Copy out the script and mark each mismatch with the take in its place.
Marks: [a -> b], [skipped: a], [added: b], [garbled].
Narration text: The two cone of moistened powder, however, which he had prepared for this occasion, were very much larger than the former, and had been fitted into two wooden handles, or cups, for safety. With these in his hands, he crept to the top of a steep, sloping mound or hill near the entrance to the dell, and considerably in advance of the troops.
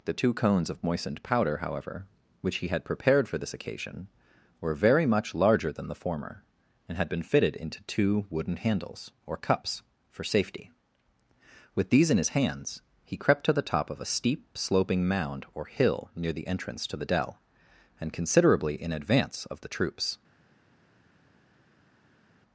The two [cone -> cones] of moistened powder, however, which he had prepared for this occasion, were very much larger than the former, and had been fitted into two wooden handles, or cups, for safety. With these in his hands, he crept to the top of a steep, sloping mound or hill near the entrance to the dell, and considerably in advance of the troops.